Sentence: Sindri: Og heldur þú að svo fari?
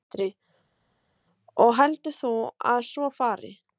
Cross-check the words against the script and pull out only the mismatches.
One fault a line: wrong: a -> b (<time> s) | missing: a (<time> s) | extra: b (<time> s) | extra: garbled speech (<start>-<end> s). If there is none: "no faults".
no faults